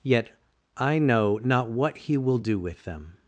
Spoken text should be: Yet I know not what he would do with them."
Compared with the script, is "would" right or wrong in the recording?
wrong